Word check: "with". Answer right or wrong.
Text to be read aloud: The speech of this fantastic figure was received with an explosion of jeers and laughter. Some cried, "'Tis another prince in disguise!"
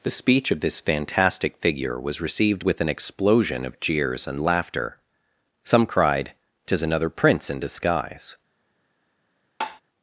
right